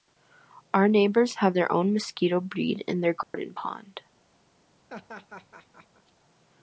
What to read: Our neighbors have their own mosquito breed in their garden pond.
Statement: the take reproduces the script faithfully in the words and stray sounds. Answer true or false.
false